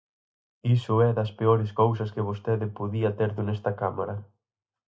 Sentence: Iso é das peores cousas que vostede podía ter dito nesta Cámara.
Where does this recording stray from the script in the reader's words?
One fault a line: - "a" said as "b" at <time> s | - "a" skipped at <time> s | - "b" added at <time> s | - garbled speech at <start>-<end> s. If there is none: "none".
- "dito" skipped at 3.3 s